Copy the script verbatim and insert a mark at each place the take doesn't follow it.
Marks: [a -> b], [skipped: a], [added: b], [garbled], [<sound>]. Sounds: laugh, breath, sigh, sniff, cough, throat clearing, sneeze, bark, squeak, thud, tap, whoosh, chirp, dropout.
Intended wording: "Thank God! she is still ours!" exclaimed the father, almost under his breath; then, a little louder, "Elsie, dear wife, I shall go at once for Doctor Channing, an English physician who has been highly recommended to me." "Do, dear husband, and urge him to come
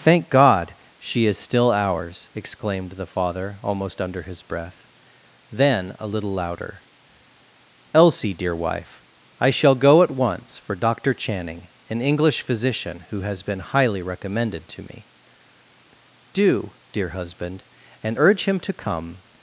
"Thank God! she is still ours!" exclaimed the father, almost under his breath; then, a little louder, "Elsie, dear wife, I shall go at once for Doctor Channing, an English physician who has been highly recommended to me." "Do, dear husband, and urge him to come